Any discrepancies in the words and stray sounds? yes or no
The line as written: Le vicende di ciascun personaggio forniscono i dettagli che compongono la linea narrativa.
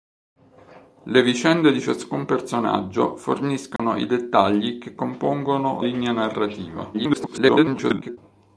yes